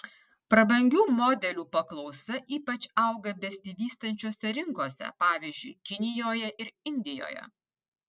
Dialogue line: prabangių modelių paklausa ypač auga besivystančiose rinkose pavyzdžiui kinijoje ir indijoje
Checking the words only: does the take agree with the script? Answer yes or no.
yes